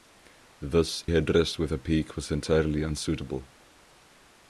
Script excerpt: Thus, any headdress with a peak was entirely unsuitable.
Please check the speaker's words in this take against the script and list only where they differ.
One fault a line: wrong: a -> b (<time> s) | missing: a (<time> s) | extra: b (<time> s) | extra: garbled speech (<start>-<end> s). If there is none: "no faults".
missing: any (1.1 s)